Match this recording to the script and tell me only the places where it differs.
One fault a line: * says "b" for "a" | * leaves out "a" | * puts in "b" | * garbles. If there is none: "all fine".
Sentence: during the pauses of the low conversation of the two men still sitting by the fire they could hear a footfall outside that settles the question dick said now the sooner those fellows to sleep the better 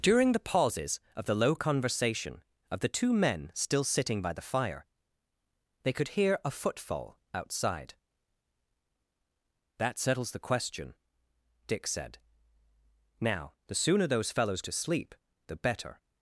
all fine